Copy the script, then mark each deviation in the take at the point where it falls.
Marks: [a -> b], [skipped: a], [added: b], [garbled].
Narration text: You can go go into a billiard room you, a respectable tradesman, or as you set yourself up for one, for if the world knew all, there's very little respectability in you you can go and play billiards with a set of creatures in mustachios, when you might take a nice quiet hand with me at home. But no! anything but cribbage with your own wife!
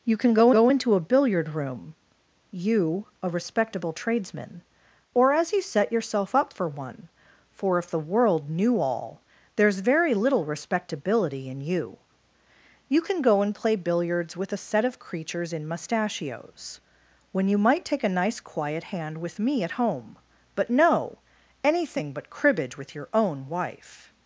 You can go go into a billiard room you, a respectable tradesman, or as you set yourself up for one, for if the world knew all, there's very little respectability in you you can go and play billiards with a set of creatures in mustachios, when you might take a nice quiet hand with me at home. But no! anything but cribbage with your own wife!